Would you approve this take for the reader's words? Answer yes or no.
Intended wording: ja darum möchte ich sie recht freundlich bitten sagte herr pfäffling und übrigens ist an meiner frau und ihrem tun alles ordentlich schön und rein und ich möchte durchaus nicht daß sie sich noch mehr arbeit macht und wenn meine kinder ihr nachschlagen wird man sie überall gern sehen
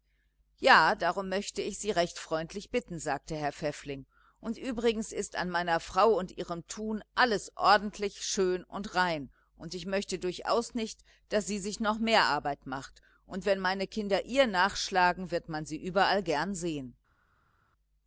yes